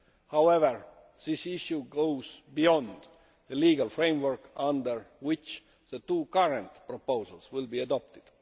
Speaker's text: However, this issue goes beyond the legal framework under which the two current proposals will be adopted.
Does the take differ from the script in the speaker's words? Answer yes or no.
no